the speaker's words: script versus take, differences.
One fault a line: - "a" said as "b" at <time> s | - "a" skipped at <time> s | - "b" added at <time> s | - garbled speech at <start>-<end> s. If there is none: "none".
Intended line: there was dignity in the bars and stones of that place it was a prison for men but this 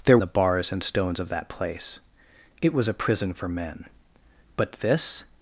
- "was dignity in" skipped at 0.2 s